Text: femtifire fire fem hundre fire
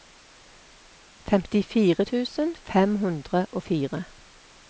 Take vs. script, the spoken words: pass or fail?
fail